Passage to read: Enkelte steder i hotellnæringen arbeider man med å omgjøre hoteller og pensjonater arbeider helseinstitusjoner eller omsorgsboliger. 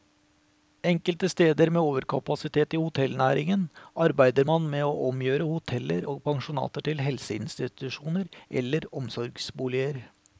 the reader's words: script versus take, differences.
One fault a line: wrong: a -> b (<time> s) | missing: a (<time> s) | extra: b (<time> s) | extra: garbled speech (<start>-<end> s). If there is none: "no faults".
extra: med overkapasitet (1.7 s)
wrong: arbeider -> til (6.9 s)